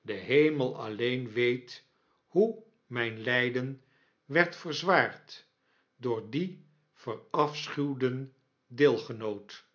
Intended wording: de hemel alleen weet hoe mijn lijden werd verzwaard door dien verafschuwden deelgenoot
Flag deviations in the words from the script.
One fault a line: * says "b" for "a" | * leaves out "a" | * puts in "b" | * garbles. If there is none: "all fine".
all fine